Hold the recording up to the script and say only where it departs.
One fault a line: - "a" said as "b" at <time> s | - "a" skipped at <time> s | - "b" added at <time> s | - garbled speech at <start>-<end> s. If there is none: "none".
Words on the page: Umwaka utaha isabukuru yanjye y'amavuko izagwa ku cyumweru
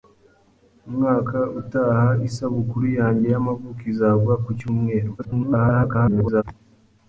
- garbled speech at 5.2-6.4 s